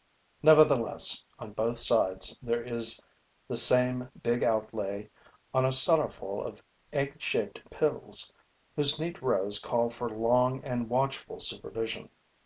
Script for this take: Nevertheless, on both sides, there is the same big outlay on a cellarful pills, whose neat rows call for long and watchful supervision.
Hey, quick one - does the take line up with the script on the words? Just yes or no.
no